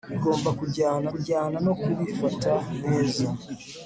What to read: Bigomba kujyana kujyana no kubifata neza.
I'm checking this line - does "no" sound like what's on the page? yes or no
yes